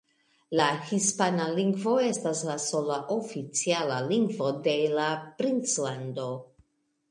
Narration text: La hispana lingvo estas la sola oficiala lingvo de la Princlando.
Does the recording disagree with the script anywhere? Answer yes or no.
no